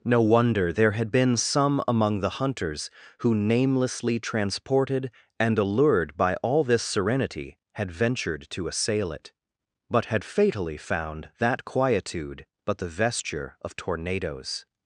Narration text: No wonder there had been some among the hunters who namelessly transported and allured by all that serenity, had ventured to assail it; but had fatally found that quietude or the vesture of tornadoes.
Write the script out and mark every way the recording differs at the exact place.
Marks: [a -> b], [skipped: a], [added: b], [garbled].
No wonder there had been some among the hunters who namelessly transported and allured by all [that -> this] serenity, had ventured to assail it; but had fatally found that quietude [or -> but] the vesture of tornadoes.